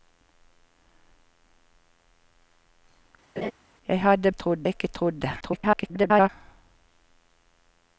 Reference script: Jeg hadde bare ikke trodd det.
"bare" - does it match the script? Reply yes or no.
no